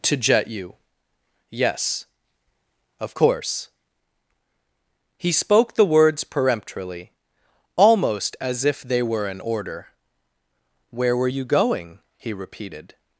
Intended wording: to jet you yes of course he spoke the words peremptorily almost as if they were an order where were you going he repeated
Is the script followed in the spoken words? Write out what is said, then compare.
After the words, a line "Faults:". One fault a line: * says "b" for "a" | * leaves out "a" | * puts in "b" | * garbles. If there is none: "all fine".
to jet you yes of course he spoke the words peremptorily almost as if they were an order where were you going he repeated
Faults:
all fine